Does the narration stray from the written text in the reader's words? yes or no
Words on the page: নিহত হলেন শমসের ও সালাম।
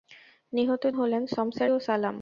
no